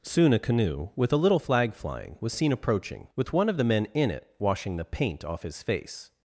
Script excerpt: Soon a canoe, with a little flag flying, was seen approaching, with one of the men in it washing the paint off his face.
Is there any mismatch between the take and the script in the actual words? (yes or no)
no